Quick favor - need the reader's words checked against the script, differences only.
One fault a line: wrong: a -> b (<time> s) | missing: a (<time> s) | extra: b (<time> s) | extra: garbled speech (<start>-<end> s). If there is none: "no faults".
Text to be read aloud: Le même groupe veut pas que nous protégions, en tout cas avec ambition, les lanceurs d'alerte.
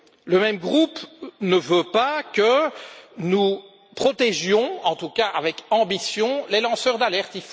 extra: ne (1.4 s)